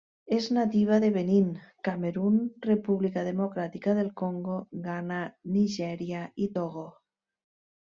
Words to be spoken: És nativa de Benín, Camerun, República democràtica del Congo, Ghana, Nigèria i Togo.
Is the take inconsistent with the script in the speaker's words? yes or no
no